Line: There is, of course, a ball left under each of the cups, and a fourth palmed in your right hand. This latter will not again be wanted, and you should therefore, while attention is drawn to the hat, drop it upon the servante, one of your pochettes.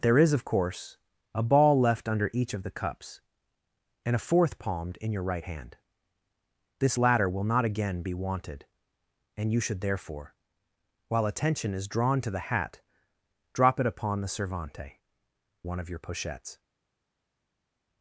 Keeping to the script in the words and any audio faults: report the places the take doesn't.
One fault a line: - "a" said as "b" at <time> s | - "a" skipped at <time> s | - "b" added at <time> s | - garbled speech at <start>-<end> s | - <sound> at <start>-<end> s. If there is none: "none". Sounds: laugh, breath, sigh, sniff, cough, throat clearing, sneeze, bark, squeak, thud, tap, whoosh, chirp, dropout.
none